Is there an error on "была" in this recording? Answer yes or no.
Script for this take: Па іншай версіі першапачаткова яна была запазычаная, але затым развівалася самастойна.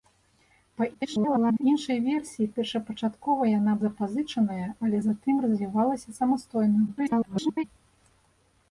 yes